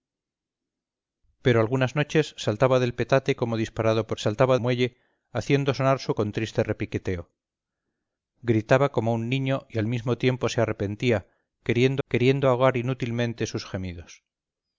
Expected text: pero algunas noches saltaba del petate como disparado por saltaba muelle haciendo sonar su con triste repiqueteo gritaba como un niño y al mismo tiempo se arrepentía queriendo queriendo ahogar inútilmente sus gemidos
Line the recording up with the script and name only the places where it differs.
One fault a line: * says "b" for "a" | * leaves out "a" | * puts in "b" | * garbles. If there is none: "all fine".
all fine